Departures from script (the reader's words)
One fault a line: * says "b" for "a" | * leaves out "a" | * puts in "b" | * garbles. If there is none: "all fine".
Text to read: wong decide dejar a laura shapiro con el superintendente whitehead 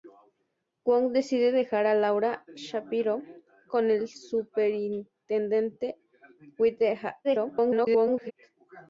* garbles